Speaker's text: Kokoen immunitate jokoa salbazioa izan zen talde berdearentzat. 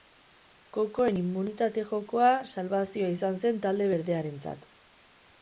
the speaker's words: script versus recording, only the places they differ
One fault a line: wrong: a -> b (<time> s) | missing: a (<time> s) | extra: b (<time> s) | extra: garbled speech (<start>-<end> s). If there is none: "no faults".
no faults